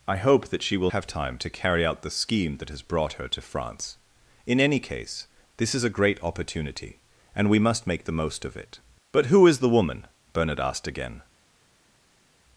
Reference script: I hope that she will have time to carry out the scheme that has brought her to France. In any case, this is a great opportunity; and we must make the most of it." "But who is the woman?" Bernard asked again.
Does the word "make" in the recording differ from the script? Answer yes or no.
no